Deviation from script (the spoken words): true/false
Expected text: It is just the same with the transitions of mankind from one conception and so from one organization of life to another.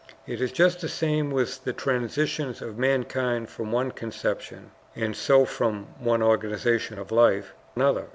true